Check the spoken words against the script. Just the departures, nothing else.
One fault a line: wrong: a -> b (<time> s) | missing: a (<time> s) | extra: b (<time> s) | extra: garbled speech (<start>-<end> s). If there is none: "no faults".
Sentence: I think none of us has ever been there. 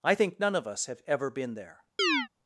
wrong: has -> have (0.9 s)